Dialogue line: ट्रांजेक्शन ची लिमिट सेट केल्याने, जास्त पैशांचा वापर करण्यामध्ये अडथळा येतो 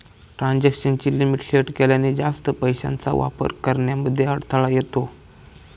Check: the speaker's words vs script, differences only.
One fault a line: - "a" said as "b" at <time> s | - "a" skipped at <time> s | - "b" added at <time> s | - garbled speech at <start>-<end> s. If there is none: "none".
none